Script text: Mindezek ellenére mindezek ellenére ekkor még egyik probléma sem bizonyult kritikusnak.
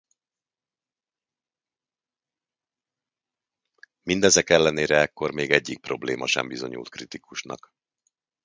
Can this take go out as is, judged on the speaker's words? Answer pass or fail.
fail